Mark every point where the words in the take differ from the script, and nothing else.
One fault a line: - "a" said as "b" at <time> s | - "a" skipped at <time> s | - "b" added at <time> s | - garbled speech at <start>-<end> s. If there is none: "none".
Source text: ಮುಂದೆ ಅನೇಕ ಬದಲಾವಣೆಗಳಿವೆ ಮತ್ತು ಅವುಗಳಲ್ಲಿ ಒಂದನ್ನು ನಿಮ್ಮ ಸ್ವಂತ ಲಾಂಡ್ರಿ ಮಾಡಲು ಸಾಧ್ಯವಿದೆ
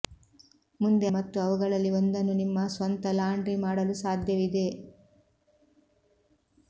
- "ಅನೇಕ ಬದಲಾವಣೆಗಳಿವೆ" skipped at 1.1 s